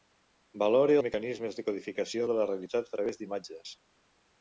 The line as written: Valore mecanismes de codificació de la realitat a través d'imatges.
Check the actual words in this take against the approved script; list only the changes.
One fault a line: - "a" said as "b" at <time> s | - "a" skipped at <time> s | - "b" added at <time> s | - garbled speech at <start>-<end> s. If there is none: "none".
none